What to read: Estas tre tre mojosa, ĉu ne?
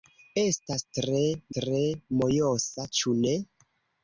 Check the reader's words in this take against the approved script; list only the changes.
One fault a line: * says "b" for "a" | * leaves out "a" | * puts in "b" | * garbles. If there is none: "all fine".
all fine